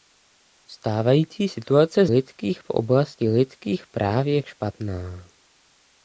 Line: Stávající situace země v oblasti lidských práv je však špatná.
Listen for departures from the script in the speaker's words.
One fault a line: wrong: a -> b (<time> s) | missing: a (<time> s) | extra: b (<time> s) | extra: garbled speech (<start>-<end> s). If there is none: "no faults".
wrong: země -> lidských (2.0 s)
missing: však (4.4 s)